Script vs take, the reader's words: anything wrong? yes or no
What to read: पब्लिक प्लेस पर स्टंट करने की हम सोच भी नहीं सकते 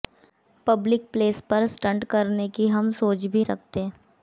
yes